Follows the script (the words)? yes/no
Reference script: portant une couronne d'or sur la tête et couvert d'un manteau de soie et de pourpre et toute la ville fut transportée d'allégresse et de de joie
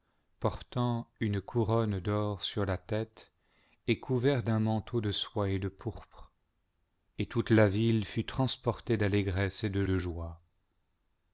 yes